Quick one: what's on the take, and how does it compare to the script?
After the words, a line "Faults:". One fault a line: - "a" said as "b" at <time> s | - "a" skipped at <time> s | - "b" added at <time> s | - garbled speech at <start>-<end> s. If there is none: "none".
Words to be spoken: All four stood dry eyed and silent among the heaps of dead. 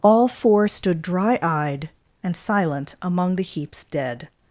All four stood dry eyed and silent among the heaps dead.
Faults:
- "of" skipped at 3.8 s